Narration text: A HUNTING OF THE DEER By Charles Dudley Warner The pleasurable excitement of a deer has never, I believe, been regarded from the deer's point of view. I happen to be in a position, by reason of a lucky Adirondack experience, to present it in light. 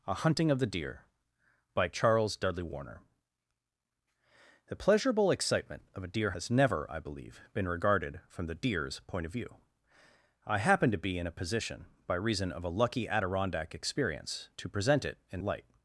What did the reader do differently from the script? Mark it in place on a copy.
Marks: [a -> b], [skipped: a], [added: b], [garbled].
A HUNTING OF THE DEER By Charles Dudley Warner The pleasurable excitement of a deer has never, I believe, been regarded from the deer's point of view. I happen to be in a position, by reason of a lucky Adirondack experience, to present it in light.